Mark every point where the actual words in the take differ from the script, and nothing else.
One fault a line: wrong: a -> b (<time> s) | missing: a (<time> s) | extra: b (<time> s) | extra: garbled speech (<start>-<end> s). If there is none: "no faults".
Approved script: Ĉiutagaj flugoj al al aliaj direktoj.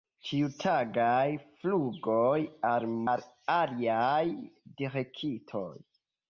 no faults